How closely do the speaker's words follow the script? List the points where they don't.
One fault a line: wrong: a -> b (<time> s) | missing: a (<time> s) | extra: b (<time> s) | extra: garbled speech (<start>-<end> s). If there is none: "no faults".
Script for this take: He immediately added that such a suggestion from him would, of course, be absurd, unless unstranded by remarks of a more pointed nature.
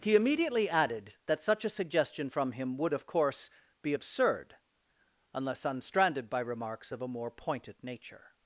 no faults